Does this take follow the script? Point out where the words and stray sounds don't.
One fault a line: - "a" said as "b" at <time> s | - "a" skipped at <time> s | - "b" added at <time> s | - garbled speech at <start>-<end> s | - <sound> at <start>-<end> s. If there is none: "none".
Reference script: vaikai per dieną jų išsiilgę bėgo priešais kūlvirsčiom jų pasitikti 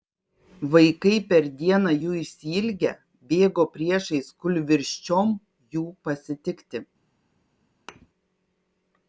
- thud at 7.9-8.1 s